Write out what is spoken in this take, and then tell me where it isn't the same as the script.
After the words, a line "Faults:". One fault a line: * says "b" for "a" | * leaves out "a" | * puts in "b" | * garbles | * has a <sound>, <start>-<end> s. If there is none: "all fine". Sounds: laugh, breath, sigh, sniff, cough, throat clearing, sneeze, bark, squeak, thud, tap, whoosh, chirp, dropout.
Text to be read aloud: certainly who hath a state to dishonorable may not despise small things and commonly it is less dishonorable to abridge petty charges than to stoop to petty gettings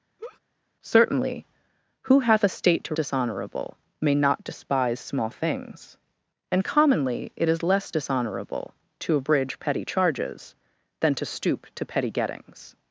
certainly who hath a state to dishonorable may not despise small things and commonly it is less dishonorable to abridge petty charges than to stoop to petty gettings
Faults:
* has a laugh, 0.2-0.4 s